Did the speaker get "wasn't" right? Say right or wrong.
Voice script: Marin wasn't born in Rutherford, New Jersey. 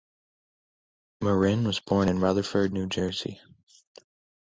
wrong